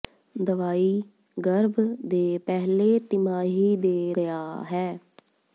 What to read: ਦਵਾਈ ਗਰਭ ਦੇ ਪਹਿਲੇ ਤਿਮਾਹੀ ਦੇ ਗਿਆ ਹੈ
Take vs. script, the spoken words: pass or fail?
pass